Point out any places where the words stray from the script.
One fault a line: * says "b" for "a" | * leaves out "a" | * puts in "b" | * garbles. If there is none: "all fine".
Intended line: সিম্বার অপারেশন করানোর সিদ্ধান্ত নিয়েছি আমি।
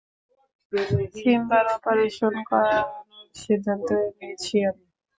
all fine